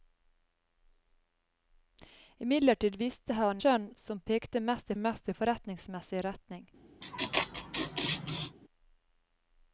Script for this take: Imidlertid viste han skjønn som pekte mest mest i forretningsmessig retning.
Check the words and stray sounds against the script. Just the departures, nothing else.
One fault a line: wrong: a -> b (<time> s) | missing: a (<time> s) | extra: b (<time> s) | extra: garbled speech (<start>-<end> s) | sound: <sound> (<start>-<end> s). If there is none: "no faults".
sound: laugh (7.0-8.6 s)